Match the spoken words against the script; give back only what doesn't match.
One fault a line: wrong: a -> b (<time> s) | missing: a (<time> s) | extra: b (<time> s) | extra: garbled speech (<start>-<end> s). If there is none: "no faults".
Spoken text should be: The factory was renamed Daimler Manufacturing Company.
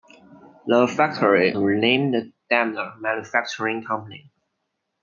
missing: was (1.5 s)